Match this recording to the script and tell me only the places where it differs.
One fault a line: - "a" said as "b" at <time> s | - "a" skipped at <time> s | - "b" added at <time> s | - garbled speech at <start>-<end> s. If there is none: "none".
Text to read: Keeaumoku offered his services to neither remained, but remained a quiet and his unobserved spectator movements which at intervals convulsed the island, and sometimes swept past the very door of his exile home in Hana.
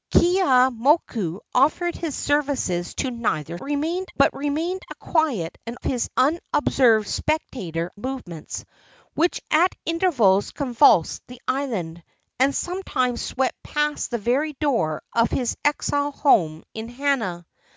none